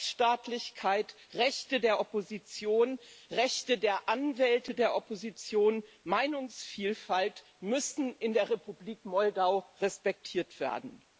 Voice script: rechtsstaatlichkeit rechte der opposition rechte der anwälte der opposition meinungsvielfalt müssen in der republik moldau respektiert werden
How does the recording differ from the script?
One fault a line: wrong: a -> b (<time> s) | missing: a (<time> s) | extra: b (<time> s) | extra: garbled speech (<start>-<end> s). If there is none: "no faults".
no faults